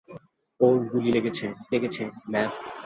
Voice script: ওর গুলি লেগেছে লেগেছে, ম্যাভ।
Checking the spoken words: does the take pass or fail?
pass